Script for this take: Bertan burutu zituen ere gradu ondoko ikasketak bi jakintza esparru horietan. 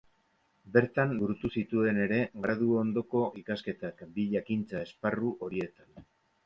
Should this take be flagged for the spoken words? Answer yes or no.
no